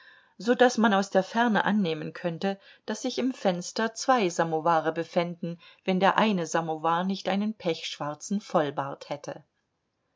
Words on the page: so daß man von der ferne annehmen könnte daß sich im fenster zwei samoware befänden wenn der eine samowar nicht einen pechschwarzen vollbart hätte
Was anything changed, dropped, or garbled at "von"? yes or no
yes